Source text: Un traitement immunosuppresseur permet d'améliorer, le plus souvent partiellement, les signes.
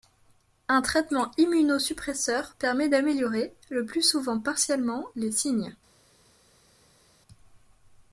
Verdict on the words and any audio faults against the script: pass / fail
pass